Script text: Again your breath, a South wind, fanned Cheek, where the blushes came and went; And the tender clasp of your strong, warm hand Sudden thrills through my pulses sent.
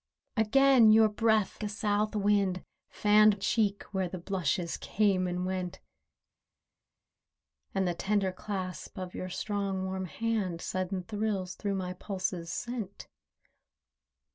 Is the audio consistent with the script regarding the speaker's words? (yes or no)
yes